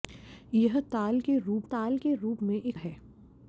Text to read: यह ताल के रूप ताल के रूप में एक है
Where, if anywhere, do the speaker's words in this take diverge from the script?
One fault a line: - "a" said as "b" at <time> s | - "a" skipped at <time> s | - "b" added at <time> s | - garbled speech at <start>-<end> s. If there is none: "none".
none